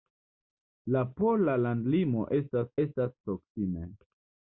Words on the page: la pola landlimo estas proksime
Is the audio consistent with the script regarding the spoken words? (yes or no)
no